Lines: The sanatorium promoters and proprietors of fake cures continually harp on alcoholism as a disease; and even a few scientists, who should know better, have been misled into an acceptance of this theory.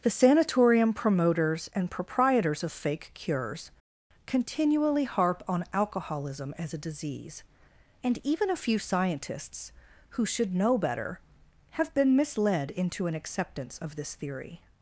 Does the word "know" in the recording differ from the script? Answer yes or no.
no